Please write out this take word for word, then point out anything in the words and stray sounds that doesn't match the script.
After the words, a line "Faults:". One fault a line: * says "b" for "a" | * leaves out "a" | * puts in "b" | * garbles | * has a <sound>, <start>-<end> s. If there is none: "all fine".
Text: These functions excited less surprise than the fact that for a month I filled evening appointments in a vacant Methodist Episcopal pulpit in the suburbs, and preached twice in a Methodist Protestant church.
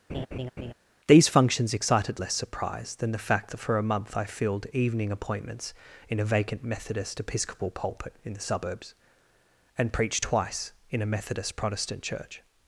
These functions excited less surprise than the fact that for a month I filled evening appointments in a vacant Methodist Episcopal pulpit in the suburbs, and preached twice in a Methodist Protestant church.
Faults:
* has a laugh, 0.1-0.7 s